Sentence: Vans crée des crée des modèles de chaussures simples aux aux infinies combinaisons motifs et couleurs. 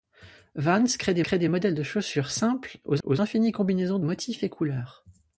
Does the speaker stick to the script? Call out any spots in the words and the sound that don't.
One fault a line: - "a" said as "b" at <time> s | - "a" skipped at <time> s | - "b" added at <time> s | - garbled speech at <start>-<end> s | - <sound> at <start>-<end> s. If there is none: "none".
none